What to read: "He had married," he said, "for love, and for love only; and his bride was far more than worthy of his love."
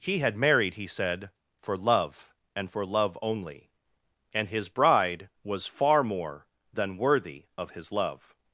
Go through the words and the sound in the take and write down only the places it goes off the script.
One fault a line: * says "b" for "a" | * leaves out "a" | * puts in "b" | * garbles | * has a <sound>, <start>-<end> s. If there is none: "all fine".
all fine